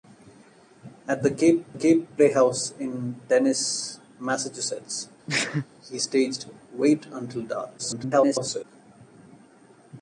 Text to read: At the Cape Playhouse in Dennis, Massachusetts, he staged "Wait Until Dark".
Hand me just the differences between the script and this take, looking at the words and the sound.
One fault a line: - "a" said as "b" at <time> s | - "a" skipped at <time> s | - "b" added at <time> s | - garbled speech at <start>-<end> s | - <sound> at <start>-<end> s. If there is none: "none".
- "Cape" added at 1.7 s
- sneeze at 5.3-5.7 s
- garbled speech at 7.8-8.6 s